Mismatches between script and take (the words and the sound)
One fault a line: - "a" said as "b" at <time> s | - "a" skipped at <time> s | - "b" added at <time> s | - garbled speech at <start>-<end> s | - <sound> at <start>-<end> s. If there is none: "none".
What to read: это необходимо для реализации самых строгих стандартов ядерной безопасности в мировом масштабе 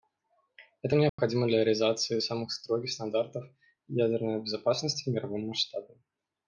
- dropout at 1.1-1.2 s